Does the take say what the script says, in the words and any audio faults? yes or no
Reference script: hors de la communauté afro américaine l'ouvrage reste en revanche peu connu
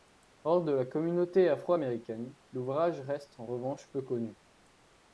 yes